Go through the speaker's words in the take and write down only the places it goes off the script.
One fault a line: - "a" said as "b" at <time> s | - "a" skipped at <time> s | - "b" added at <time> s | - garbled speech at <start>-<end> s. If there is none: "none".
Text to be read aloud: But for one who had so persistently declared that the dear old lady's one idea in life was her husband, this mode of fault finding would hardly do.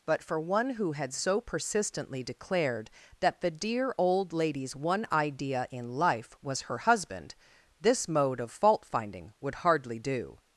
none